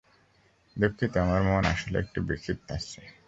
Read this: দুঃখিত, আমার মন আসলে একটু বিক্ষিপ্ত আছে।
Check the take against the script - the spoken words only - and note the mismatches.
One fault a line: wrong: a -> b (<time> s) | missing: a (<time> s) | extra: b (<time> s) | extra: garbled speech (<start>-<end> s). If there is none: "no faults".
no faults